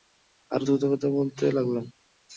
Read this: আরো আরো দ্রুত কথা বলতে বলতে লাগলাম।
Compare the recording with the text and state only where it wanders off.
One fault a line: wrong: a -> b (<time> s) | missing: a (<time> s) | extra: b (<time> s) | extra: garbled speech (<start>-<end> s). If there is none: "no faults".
missing: আরো (0.7 s)
missing: বলতে (1.4 s)